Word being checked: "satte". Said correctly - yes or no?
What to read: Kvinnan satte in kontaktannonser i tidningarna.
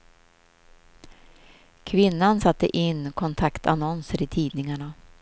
yes